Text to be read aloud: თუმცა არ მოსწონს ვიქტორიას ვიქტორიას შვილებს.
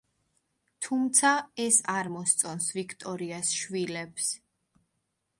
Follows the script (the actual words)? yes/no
no